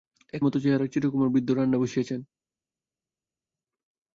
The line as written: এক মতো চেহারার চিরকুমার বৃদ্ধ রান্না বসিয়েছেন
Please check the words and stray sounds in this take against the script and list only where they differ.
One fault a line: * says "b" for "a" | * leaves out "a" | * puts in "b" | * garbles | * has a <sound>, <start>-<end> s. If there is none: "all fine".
all fine